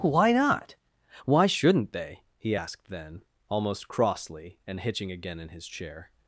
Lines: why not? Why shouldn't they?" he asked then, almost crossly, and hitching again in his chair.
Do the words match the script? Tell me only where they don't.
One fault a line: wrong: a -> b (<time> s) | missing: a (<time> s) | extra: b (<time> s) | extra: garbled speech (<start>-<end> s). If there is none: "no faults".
no faults